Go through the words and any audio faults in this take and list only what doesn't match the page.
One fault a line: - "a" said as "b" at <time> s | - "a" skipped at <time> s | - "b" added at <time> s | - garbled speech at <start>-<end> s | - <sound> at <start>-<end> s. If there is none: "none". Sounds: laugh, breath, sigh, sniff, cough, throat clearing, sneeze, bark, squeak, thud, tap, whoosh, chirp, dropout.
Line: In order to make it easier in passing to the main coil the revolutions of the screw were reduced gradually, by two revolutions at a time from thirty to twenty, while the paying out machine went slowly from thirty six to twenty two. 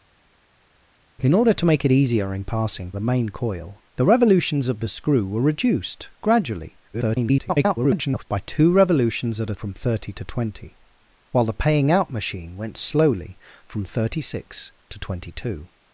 - "to" skipped at 2.9 s
- garbled speech at 6.9-8.2 s
- "time" skipped at 9.6 s